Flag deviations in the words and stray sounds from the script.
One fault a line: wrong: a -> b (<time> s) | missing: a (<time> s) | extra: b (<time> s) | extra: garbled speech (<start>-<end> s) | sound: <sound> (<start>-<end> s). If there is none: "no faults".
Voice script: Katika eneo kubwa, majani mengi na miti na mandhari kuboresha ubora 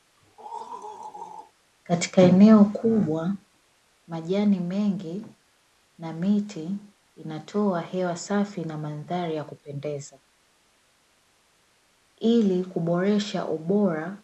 sound: throat clearing (0.2-1.5 s)
extra: inatoa hewa safi (7.1 s)
extra: ya kupendeza ili (9.3 s)